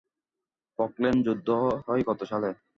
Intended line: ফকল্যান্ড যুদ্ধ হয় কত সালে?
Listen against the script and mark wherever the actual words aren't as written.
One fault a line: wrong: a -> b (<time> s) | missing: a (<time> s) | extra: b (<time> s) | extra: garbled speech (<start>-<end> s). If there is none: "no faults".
no faults